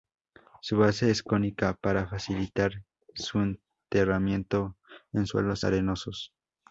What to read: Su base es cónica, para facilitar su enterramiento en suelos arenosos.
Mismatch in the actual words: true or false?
false